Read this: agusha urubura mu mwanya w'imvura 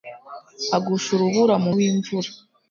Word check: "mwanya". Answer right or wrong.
wrong